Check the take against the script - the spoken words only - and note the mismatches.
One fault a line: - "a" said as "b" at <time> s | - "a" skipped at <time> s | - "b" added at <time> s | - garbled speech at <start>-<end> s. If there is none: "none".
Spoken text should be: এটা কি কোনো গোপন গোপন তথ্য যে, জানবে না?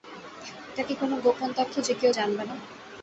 - "গোপন" skipped at 1.5 s
- "কেউ" added at 1.9 s